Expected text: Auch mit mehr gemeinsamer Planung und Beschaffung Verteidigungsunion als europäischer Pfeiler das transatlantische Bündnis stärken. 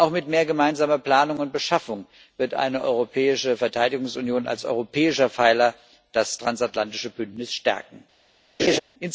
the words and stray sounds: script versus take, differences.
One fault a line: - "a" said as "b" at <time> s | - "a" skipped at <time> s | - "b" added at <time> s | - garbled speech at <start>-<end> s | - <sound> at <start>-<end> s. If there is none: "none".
- "wird eine europäische" added at 2.4 s
- laugh at 8.6-8.8 s